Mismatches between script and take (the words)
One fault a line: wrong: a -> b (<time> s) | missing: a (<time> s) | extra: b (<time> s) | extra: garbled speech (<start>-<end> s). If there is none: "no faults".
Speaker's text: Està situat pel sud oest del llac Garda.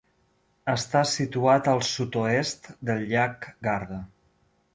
wrong: pel -> al (1.7 s)